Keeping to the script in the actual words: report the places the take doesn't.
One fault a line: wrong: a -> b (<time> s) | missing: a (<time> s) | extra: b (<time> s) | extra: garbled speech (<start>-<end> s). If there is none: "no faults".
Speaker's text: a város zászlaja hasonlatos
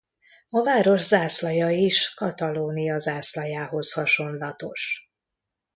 extra: is katalónia zászlajához (1.7 s)